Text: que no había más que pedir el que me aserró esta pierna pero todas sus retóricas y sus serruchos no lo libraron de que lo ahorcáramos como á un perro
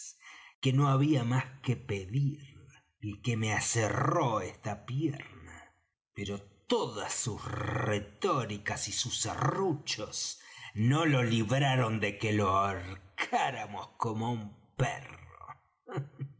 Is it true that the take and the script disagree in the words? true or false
false